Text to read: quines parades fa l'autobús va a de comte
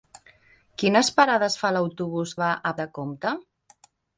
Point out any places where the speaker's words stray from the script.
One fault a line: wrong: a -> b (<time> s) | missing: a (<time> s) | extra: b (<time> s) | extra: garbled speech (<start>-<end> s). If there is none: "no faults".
no faults